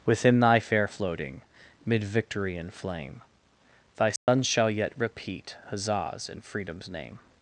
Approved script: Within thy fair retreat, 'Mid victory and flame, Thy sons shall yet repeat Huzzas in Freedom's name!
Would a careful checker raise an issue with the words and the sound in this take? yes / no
yes